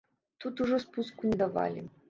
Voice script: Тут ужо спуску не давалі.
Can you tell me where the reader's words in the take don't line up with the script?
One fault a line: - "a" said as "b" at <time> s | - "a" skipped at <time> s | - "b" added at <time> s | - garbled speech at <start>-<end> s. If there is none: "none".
none